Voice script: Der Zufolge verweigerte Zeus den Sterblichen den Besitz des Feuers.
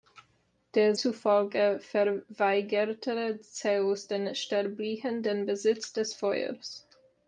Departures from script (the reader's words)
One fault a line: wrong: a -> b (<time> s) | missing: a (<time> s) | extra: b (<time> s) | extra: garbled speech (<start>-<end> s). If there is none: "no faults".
no faults